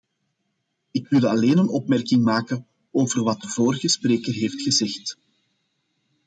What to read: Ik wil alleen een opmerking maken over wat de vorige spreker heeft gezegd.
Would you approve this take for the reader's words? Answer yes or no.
yes